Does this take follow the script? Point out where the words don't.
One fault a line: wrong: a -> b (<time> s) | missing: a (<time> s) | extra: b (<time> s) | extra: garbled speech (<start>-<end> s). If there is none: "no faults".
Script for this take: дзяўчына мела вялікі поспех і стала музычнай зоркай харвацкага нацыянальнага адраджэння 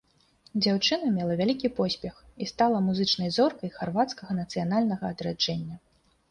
no faults